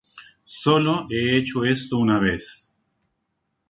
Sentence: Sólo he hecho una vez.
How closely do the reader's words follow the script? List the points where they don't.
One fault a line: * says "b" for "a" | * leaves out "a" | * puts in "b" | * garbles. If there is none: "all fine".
* puts in "esto"